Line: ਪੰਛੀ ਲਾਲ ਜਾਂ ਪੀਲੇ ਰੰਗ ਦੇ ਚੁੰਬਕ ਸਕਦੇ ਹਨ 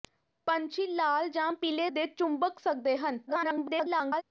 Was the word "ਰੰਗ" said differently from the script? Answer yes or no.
yes